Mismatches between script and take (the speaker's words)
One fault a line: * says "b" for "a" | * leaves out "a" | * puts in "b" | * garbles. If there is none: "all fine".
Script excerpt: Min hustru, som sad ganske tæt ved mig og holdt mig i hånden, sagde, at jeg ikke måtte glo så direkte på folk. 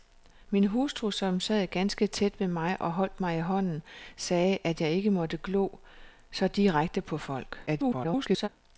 * garbles